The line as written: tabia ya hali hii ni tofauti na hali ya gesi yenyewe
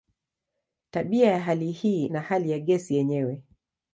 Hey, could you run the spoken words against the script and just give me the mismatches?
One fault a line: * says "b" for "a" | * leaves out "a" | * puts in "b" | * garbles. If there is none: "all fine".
* leaves out "ni tofauti"